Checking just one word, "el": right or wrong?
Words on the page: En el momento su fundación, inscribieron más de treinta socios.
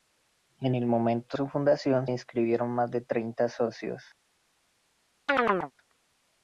right